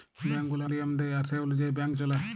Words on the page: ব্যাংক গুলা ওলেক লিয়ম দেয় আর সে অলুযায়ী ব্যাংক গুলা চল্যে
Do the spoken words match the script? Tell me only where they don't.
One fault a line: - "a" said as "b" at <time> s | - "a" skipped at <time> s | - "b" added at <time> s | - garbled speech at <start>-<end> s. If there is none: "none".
- "ওলেক" skipped at 0.7 s
- "গুলা" skipped at 1.9 s